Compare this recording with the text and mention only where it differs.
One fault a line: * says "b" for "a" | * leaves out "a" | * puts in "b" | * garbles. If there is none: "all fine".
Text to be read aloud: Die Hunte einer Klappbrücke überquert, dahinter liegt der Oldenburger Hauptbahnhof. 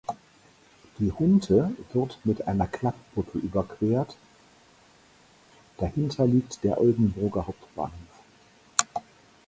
* puts in "wird mit"